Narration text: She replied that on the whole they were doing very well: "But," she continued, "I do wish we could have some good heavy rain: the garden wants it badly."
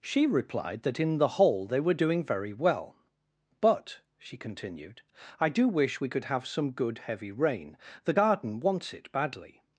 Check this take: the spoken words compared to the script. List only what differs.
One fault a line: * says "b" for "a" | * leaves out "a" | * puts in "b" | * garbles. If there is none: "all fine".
* says "in" for "on"